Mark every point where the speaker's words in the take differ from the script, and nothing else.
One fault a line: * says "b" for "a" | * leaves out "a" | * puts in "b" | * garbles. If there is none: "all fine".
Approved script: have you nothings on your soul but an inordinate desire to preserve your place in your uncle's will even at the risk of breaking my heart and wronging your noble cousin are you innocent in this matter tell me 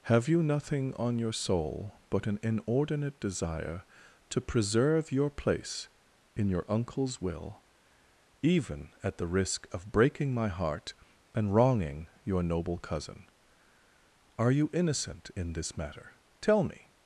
* says "nothing" for "nothings"